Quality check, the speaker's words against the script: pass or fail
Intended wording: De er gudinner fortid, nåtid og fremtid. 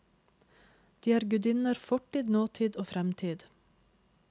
pass